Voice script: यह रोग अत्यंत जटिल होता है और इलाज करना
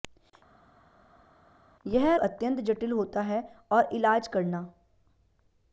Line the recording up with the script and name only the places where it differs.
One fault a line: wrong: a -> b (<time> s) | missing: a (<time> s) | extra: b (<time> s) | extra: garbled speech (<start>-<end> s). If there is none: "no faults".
missing: रोग (2.2 s)